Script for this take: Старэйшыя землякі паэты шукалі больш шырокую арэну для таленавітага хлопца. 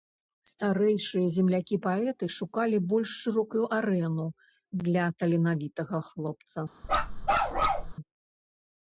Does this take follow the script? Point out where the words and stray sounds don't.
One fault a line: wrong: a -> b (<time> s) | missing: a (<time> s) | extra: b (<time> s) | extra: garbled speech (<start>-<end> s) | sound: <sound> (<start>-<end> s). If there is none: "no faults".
sound: bark (6.8-7.9 s)